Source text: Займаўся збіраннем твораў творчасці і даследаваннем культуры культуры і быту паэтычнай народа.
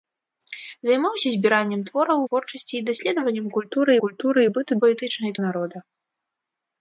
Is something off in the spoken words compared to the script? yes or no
no